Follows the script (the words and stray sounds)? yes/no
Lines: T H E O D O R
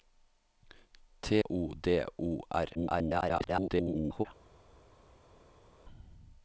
no